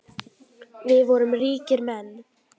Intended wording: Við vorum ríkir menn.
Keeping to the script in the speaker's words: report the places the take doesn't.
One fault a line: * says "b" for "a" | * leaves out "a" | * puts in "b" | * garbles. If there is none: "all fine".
all fine